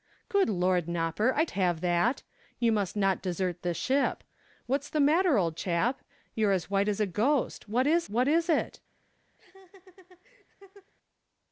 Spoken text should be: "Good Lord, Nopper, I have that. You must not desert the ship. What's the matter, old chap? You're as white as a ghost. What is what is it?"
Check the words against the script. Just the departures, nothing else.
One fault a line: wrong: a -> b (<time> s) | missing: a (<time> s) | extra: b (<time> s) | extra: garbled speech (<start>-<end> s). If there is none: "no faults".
no faults